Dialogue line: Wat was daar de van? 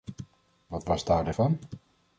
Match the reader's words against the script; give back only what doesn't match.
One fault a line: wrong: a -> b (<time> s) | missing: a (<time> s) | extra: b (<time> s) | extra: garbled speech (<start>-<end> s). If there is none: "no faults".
no faults